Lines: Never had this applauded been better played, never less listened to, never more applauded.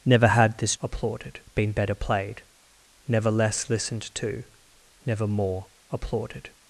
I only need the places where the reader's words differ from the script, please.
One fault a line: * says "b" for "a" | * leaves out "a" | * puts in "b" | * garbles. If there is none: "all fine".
all fine